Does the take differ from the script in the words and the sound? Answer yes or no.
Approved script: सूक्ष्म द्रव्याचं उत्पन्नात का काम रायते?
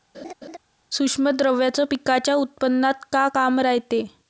yes